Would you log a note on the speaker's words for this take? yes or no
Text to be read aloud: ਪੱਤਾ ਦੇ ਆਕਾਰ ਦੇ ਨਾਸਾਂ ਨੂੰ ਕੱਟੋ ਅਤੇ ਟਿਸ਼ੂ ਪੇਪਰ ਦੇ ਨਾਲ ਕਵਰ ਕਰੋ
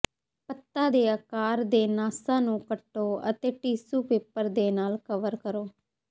no